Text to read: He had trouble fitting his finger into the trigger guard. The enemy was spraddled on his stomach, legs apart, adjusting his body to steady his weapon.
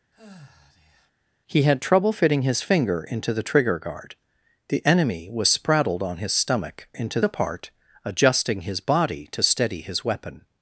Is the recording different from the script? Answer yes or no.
yes